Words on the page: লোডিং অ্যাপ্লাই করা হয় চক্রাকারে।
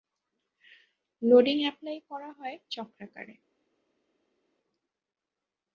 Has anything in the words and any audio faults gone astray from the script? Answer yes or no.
no